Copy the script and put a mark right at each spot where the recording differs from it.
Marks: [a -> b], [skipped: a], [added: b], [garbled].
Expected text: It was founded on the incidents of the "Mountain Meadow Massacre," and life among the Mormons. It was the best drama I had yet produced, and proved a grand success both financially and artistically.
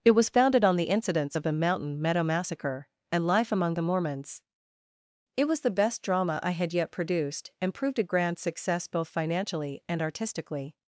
It was founded on the incidents of the "Mountain Meadow Massacre," and life among the Mormons. It was the best drama I had yet produced, and proved a grand success both financially and artistically.